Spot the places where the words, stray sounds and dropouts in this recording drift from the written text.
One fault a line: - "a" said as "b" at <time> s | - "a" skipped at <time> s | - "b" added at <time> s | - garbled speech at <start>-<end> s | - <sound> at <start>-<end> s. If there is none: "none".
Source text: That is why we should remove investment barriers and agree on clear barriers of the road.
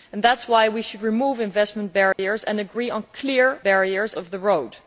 - dropout at 2.1-2.2 s